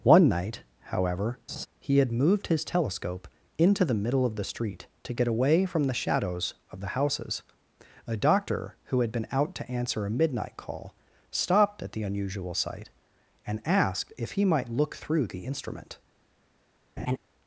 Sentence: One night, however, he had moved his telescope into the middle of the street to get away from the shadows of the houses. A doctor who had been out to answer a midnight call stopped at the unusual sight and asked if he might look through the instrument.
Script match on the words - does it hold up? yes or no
yes